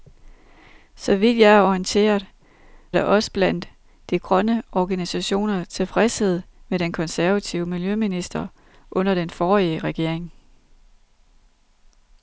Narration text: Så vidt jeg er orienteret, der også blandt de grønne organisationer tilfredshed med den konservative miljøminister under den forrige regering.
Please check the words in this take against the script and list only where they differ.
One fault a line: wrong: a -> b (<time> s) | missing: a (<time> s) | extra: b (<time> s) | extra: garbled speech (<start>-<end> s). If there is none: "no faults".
no faults